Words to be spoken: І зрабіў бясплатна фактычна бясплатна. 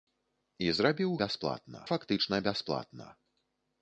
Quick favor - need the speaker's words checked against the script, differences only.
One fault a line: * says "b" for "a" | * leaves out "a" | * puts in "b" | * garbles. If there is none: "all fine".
all fine